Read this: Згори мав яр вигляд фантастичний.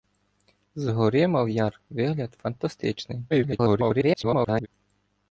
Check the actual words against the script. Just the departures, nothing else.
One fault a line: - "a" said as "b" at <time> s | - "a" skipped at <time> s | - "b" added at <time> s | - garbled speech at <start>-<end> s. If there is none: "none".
- garbled speech at 3.3-4.7 s